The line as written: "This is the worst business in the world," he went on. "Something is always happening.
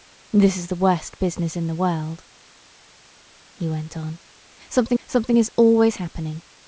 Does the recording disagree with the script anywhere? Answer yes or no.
yes